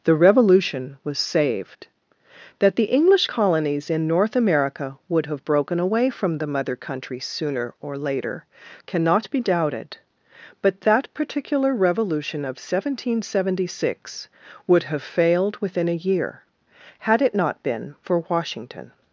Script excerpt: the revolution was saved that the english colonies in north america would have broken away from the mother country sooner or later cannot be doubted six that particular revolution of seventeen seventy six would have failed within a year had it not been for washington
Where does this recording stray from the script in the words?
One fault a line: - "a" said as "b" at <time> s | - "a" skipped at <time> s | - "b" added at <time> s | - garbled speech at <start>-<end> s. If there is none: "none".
- "six" said as "but" at 10.6 s